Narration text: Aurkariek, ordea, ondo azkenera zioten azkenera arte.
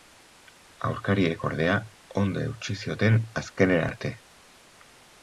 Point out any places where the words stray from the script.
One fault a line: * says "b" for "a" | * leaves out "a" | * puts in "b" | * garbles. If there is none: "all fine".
* says "eutsi" for "azkenera"